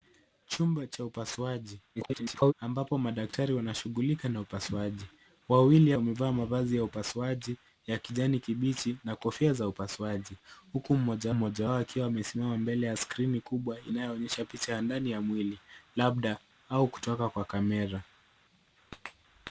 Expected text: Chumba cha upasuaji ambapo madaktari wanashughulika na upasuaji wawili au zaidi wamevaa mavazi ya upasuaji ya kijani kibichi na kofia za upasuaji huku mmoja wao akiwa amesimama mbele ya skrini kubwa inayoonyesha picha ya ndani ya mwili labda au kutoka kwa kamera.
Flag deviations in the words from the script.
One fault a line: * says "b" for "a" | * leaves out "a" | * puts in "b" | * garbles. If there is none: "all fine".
* garbles
* leaves out "au zaidi"
* puts in "mmoja"